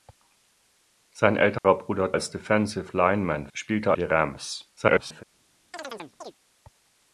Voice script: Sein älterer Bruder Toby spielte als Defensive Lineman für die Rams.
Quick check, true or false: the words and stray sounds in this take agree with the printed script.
false